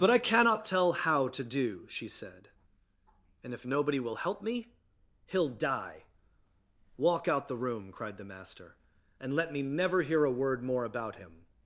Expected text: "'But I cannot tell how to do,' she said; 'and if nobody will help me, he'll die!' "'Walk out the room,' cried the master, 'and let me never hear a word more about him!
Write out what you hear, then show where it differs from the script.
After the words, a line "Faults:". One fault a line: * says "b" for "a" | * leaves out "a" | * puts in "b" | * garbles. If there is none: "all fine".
"'But I cannot tell how to do,' she said; 'and if nobody will help me, he'll die!' "'Walk out the room,' cried the master, 'and let me never hear a word more about him!
Faults:
all fine